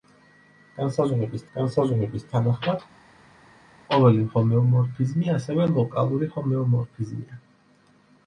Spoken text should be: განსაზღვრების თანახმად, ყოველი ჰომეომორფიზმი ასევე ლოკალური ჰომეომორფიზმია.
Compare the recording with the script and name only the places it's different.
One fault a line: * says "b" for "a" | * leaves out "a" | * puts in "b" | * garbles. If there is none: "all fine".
* puts in "განსაზღვრების"